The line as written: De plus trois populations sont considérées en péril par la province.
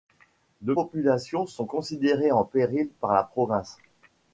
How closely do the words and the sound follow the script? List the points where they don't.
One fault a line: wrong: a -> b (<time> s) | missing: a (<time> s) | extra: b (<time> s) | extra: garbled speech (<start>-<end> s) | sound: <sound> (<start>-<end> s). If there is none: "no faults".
missing: plus trois (0.7 s)